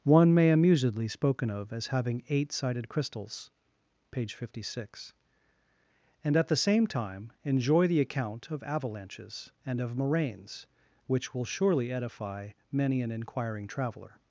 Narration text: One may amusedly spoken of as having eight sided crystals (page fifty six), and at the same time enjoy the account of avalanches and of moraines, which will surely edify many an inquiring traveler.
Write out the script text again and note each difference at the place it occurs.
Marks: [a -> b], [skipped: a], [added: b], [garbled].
One may amusedly spoken of as having eight sided crystals (page fifty six), and at the same time enjoy the account of avalanches and of moraines, which will surely edify many an inquiring traveler.